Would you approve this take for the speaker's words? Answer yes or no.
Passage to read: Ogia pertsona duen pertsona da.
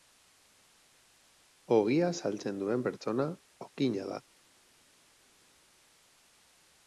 no